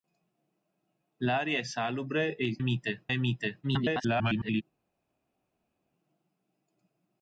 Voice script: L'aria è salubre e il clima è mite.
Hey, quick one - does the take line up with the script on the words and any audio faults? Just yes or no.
no